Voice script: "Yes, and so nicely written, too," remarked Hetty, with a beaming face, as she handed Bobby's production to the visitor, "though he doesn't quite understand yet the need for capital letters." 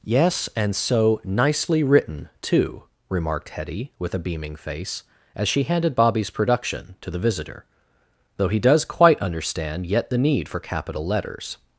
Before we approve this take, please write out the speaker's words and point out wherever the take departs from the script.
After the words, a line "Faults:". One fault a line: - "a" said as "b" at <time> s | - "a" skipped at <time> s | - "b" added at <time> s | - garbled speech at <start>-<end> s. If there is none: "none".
"Yes, and so nicely written, too," remarked Hetty, with a beaming face, as she handed Bobby's production to the visitor, "though he does quite understand yet the need for capital letters."
Faults:
- "doesn't" said as "does" at 8.6 s